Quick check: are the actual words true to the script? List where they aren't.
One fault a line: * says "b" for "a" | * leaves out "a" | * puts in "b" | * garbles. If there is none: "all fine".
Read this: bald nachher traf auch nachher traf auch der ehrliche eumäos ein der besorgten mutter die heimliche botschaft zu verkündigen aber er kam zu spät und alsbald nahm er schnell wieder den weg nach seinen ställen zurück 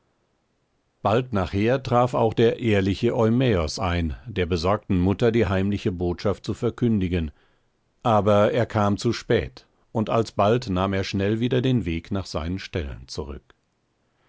* leaves out "nachher traf auch"